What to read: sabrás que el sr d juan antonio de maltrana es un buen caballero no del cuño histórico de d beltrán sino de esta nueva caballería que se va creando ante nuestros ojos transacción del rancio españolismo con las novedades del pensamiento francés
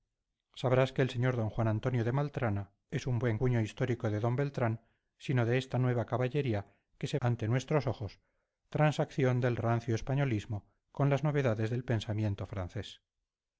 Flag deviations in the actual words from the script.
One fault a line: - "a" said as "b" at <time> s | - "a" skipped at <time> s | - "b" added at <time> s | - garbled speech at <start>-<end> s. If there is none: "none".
- "caballero no del" skipped at 3.4 s
- "va creando" skipped at 7.2 s